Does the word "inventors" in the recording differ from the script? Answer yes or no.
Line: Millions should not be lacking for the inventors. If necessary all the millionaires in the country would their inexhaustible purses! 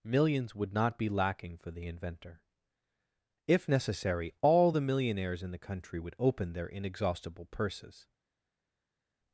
yes